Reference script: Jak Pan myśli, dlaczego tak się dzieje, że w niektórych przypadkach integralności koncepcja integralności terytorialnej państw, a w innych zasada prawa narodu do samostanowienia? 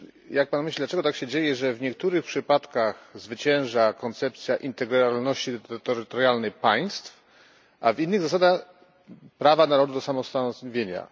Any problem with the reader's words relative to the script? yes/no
yes